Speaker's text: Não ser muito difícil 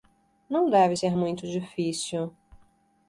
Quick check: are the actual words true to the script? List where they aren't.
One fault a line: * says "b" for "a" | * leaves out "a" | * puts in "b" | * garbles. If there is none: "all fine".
* puts in "deve"